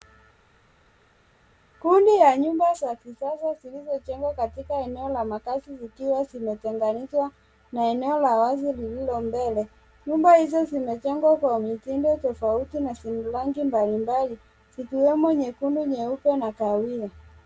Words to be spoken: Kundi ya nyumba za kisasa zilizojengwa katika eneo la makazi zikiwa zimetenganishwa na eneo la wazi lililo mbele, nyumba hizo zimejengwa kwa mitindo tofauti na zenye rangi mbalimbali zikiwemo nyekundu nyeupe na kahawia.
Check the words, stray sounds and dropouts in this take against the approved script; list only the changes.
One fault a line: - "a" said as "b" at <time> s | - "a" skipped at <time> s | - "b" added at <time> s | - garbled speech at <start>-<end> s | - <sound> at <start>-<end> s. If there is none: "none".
none